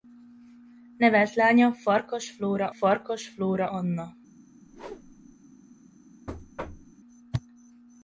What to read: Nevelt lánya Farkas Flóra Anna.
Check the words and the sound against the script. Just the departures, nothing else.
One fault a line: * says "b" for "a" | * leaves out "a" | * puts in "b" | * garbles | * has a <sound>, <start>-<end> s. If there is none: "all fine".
* puts in "Farkas Flóra"
* has a whoosh, 4.7-5.4 s
* has a thud, 6.3-6.9 s